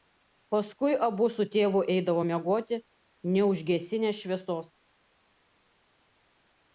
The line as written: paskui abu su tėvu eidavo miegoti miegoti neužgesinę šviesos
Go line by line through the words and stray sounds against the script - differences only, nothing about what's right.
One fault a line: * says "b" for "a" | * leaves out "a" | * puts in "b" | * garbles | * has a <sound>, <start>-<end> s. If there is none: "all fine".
* leaves out "miegoti"